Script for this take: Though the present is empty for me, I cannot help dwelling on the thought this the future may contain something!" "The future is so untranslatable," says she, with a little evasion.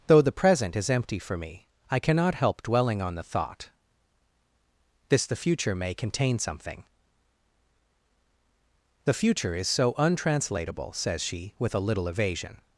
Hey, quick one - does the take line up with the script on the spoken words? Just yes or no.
yes